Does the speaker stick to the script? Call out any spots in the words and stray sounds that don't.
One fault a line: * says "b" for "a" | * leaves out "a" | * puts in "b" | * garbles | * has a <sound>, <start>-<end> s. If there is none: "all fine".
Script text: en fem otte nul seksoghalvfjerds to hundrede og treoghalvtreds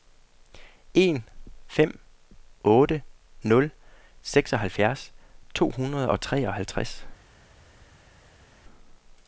all fine